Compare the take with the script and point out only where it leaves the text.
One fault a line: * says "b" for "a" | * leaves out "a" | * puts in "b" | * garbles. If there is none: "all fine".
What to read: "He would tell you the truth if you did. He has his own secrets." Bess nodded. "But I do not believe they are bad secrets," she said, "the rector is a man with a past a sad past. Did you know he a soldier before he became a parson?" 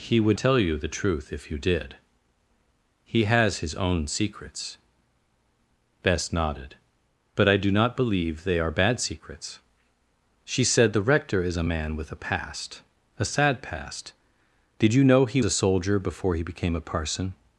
all fine